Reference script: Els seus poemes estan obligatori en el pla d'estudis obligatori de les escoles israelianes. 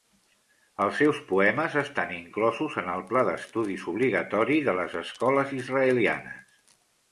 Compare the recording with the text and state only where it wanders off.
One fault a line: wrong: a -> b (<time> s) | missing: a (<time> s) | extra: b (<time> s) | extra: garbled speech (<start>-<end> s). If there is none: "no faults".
wrong: obligatori -> inclosos (2.1 s)